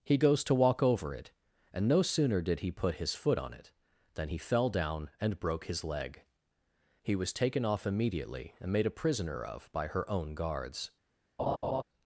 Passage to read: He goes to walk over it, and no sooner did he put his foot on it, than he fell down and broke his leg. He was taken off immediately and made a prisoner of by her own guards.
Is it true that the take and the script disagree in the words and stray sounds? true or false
true